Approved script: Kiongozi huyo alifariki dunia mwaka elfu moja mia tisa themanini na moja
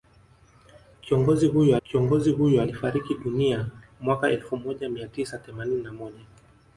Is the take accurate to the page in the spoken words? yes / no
no